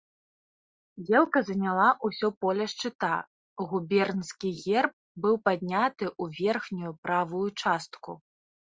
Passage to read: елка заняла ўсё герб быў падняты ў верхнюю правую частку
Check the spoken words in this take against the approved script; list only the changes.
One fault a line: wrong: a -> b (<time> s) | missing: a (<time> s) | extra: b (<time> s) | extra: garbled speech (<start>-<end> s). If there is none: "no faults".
extra: поле шчыта губернскі (2.5 s)